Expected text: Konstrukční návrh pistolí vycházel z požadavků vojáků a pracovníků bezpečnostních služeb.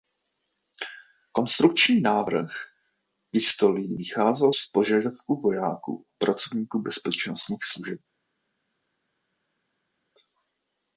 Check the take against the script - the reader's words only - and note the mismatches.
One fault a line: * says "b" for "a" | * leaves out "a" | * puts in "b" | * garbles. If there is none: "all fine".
all fine